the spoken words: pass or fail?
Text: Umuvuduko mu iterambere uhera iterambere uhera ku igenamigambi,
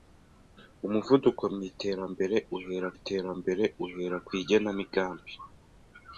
pass